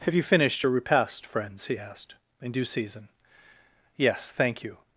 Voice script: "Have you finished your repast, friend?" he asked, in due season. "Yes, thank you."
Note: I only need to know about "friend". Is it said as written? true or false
false